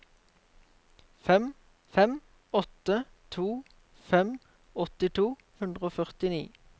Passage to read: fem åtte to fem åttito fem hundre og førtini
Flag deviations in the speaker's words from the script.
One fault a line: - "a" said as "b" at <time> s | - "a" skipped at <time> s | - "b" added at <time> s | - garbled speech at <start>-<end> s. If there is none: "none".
- "fem" added at 2.0 s
- "fem" skipped at 5.3 s